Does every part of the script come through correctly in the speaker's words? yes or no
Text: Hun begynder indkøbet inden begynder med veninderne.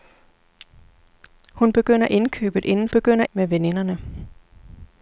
yes